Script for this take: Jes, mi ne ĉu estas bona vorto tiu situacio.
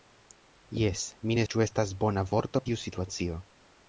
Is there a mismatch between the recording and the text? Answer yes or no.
no